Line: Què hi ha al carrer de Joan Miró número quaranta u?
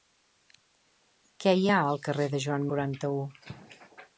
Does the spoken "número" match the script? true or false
false